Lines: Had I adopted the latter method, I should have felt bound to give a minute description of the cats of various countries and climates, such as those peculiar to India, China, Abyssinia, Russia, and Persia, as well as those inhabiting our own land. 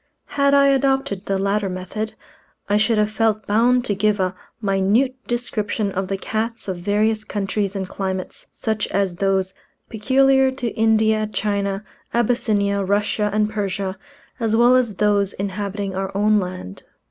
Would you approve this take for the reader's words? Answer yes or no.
yes